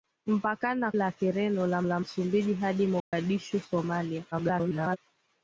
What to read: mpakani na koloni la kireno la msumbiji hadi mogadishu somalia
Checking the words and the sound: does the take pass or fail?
fail